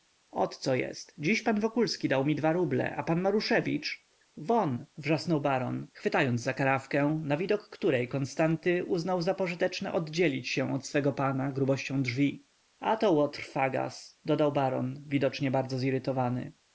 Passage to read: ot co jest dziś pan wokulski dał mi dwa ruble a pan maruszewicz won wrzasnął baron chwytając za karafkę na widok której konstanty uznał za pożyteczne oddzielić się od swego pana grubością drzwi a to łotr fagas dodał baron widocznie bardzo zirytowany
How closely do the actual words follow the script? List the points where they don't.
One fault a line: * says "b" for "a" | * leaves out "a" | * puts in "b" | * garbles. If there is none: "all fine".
all fine